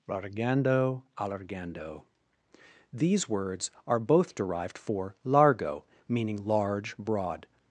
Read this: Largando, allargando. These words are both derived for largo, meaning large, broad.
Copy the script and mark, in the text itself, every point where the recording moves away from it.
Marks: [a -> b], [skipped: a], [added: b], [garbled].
Largando, allargando. These words are both derived for largo, meaning large, broad.